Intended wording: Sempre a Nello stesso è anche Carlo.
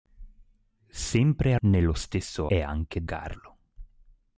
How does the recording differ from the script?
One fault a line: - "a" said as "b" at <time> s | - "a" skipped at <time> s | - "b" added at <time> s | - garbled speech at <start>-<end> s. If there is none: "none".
none